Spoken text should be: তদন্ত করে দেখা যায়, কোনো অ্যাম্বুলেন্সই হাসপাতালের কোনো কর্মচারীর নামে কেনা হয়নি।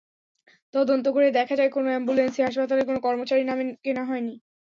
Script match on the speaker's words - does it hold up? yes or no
yes